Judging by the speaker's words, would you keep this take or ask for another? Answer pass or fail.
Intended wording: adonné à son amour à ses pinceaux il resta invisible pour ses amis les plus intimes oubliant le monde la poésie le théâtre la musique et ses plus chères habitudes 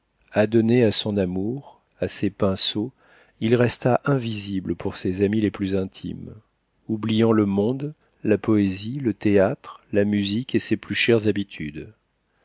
pass